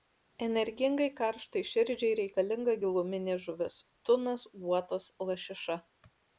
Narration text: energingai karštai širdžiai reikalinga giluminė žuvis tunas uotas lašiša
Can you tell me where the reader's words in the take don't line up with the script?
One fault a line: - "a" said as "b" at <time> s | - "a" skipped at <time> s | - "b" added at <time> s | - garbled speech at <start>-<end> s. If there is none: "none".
none